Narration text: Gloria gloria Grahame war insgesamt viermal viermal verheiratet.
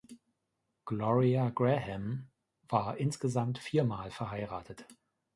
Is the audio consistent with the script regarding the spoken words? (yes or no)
no